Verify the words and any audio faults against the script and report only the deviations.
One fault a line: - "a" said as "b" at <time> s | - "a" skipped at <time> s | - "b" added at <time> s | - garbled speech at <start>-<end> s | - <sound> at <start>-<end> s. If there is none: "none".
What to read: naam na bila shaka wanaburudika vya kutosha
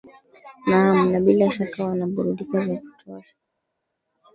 none